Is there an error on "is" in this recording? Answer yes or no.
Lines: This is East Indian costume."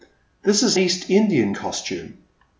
no